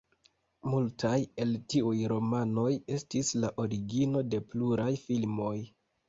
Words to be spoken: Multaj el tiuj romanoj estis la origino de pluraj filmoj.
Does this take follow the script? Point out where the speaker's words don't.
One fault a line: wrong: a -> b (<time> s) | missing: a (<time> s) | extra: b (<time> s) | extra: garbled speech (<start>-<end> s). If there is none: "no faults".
no faults